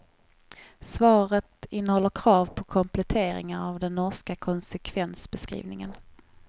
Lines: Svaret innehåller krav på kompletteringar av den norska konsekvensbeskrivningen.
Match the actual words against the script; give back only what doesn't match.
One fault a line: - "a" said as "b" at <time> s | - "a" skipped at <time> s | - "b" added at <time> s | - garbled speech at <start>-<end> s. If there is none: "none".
none